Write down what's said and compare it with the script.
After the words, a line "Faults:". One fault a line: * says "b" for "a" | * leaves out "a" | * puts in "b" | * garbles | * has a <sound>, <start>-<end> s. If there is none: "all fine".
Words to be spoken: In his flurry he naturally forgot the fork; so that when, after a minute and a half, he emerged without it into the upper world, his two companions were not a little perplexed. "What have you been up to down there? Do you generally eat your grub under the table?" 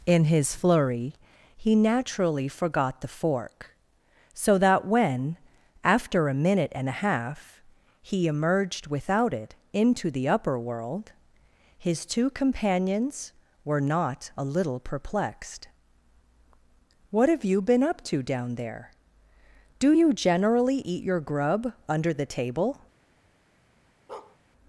In his flurry he naturally forgot the fork; so that when, after a minute and a half, he emerged without it into the upper world, his two companions were not a little perplexed. "What have you been up to down there? Do you generally eat your grub under the table?"
Faults:
* has a bark, 24.1-24.4 s